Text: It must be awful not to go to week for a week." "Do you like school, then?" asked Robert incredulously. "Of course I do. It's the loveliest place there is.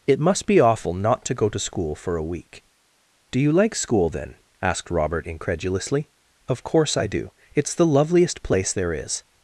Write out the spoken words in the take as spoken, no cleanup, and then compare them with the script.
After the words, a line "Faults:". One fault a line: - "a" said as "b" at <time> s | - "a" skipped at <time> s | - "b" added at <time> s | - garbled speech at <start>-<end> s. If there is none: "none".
It must be awful not to go to school for a week." "Do you like school, then?" asked Robert incredulously. "Of course I do. It's the loveliest place there is.
Faults:
- "week" said as "school" at 1.6 s